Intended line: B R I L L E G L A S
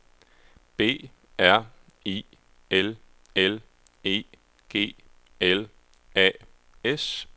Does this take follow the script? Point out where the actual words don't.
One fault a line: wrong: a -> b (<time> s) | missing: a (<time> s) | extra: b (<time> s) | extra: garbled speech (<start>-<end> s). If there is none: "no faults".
no faults